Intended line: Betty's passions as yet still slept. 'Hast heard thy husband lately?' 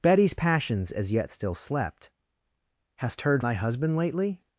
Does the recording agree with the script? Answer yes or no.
yes